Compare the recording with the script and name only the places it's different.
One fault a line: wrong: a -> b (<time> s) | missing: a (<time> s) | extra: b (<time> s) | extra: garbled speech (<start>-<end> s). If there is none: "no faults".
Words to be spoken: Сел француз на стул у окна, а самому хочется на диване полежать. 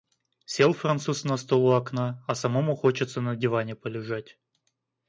no faults